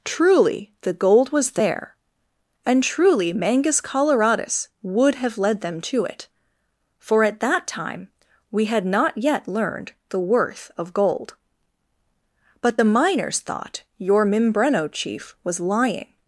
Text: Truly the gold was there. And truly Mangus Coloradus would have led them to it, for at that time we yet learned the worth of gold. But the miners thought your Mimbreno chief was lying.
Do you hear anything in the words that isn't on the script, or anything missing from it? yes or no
yes